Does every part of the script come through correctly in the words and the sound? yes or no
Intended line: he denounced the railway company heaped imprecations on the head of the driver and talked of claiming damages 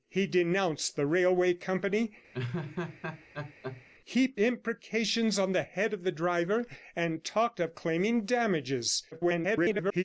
no